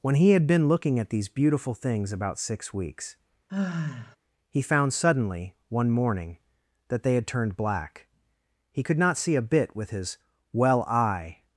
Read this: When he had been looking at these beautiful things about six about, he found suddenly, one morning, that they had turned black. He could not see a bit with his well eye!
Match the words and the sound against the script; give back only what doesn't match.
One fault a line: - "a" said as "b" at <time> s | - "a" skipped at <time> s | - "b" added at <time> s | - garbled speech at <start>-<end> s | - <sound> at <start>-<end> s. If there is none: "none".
- "about" said as "weeks" at 2.7 s
- sigh at 3.5-4.2 s